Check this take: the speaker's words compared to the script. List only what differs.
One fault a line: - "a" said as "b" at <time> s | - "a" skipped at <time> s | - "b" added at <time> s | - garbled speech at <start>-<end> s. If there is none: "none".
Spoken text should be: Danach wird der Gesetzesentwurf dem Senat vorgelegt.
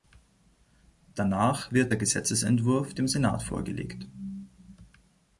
none